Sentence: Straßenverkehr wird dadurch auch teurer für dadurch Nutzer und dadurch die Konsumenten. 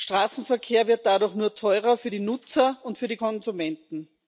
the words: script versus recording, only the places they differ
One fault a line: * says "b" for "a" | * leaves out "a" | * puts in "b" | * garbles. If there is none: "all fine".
* says "nur" for "auch"
* says "die" for "dadurch"
* says "für" for "dadurch"